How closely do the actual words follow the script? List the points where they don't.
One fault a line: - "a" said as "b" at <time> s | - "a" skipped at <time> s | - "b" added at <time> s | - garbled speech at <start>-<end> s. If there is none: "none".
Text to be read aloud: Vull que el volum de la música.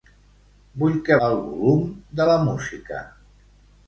none